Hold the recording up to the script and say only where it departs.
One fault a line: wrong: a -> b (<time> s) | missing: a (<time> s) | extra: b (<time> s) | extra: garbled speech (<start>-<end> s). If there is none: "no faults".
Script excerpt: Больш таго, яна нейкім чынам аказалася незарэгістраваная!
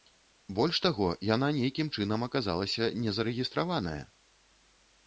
no faults